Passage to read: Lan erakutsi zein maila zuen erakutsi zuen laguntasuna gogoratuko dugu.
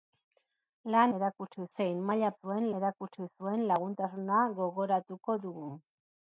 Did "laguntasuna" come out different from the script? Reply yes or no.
no